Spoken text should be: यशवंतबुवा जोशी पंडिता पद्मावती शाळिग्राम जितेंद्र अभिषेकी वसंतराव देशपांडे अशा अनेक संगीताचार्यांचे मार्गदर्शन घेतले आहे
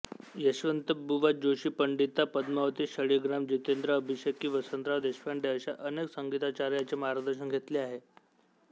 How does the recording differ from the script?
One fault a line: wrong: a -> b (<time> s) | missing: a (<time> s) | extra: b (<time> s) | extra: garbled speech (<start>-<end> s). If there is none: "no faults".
no faults